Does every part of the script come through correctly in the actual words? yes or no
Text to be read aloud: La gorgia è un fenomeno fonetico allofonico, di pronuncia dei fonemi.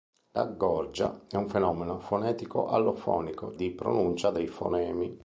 yes